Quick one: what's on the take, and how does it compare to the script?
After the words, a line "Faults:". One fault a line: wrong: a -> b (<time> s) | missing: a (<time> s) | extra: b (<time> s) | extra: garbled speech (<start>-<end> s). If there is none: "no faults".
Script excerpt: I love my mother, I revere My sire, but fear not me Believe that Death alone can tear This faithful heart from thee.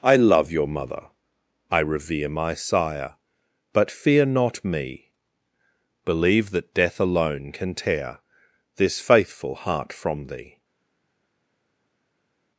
I love your mother, I revere My sire, but fear not me Believe that Death alone can tear This faithful heart from thee.
Faults:
wrong: my -> your (0.5 s)